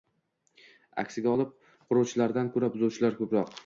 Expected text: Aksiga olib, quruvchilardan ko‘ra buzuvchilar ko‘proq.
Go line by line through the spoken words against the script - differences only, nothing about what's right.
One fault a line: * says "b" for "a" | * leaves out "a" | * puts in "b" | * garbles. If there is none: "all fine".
all fine